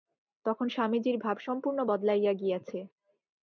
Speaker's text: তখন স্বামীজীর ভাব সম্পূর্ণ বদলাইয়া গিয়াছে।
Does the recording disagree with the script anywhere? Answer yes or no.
no